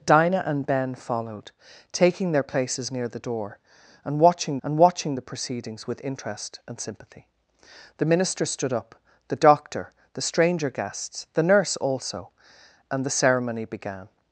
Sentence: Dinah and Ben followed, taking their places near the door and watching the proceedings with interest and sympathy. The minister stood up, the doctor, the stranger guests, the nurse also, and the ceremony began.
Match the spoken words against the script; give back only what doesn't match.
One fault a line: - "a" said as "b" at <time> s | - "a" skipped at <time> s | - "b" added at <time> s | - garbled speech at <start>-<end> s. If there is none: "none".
- "and watching" added at 4.6 s